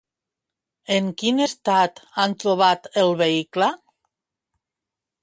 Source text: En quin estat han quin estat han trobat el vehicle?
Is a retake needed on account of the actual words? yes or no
yes